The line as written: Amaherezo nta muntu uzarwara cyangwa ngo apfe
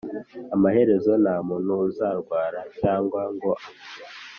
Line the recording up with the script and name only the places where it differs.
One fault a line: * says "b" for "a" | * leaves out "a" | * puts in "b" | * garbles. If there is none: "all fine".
all fine